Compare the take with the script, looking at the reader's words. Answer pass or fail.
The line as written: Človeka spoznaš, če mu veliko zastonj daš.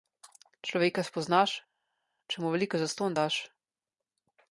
pass